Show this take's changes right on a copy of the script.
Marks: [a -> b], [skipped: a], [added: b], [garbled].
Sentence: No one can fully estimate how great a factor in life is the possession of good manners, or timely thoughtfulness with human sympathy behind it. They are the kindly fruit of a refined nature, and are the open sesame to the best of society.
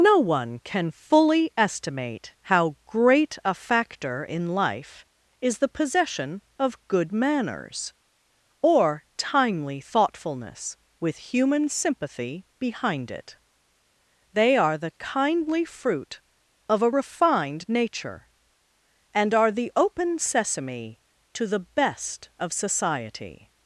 No one can fully estimate how great a factor in life is the possession of good manners, or timely thoughtfulness with human sympathy behind it. They are the kindly fruit of a refined nature, and are the open sesame to the best of society.